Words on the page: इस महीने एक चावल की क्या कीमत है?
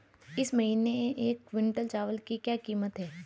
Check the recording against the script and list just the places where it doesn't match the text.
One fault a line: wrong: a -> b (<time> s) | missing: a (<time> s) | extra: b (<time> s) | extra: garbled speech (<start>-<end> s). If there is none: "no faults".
extra: क्विंटल (1.5 s)